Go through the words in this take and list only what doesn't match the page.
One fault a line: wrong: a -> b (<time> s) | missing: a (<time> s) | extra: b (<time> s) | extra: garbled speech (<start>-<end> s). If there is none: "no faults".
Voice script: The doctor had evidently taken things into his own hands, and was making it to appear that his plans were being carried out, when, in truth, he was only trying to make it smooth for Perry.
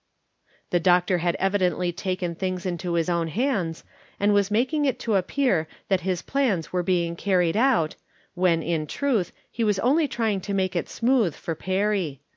no faults